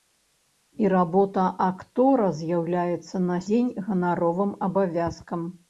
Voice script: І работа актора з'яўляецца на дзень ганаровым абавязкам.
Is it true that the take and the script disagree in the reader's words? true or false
false